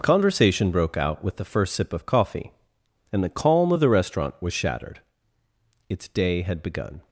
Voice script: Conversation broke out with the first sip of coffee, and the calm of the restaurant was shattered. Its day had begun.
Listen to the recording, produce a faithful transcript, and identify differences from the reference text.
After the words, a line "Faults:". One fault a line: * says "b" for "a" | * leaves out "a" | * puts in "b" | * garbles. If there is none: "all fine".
Conversation broke out with the first sip of coffee, and the calm of the restaurant was shattered. Its day had begun.
Faults:
all fine